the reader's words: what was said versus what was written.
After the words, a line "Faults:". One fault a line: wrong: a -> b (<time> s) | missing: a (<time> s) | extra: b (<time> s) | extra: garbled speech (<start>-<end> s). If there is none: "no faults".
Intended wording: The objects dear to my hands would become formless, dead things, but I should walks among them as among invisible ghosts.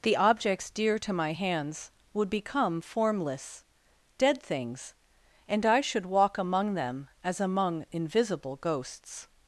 The objects dear to my hands would become formless, dead things, and I should walk among them as among invisible ghosts.
Faults:
wrong: but -> and (5.5 s)
wrong: walks -> walk (6.0 s)